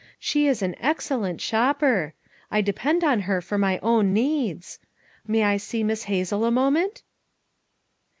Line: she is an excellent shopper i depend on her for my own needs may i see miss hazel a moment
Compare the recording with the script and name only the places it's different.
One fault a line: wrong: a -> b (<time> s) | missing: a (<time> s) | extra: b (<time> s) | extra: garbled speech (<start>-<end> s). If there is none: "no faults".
no faults